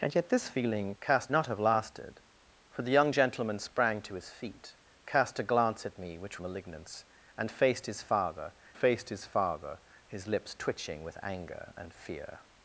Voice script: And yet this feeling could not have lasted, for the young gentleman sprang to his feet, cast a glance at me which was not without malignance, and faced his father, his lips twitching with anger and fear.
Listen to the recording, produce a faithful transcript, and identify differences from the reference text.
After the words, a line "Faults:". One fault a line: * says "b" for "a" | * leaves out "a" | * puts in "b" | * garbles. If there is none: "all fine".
And yet this feeling cast not have lasted, for the young gentleman sprang to his feet, cast a glance at me which malignance, and faced his father faced his father, his lips twitching with anger and fear.
Faults:
* says "cast" for "could"
* says "malignance and faced his father" for "was not without malignance and"